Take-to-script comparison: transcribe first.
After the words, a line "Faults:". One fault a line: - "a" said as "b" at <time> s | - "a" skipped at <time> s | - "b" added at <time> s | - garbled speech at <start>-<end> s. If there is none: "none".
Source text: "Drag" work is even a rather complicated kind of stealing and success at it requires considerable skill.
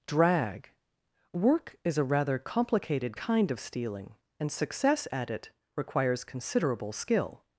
"Drag" work is a rather complicated kind of stealing and success at it requires considerable skill.
Faults:
- "even" skipped at 2.0 s